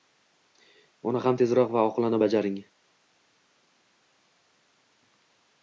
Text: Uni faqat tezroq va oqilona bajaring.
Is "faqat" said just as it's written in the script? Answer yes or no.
no